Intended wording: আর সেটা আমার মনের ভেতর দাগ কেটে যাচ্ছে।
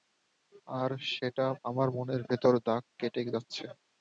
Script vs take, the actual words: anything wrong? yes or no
no